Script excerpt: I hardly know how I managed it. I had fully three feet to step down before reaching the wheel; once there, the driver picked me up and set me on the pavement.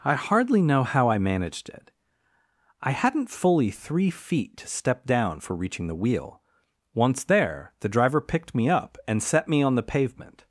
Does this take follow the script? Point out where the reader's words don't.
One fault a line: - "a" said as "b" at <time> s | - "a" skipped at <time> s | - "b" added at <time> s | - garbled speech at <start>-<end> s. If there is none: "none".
- "had" said as "hadn't" at 2.9 s
- "before" said as "for" at 5.4 s